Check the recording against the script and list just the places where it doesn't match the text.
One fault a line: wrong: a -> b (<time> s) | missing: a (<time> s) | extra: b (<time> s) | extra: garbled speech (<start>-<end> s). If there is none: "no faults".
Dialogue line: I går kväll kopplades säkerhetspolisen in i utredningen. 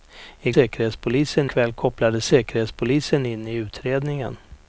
wrong: går -> säkerhetspolisen (0.5 s)